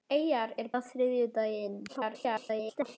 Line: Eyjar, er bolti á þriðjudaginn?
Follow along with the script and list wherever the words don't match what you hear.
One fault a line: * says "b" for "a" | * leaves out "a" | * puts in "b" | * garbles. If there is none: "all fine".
* leaves out "bolti"
* garbles